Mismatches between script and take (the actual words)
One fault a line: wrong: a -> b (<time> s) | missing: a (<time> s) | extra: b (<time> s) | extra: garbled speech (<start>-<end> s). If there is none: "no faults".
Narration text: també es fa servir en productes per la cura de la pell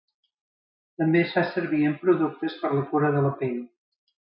no faults